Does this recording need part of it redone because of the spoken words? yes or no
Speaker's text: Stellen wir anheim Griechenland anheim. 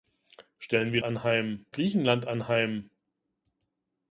no